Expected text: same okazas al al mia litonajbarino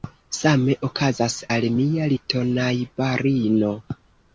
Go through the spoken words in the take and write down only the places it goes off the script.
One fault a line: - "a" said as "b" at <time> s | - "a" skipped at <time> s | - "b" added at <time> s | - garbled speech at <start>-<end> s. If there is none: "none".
- "al" skipped at 1.7 s